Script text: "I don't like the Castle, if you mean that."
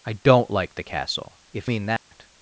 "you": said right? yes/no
no